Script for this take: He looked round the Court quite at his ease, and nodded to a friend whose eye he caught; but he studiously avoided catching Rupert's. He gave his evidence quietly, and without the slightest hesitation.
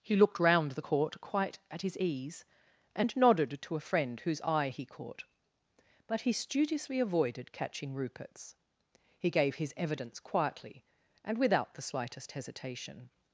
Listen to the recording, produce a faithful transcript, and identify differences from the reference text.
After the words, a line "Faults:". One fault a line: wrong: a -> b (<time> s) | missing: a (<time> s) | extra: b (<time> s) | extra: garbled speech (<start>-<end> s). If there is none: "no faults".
He looked round the Court quite at his ease, and nodded to a friend whose eye he caught; but he studiously avoided catching Rupert's. He gave his evidence quietly, and without the slightest hesitation.
Faults:
no faults